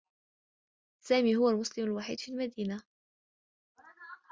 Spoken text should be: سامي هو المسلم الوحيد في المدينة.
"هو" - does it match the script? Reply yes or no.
yes